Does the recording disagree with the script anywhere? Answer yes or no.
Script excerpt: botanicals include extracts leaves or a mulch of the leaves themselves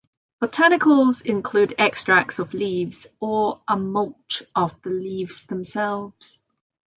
yes